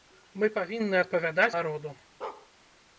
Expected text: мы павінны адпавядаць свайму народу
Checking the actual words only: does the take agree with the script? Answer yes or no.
no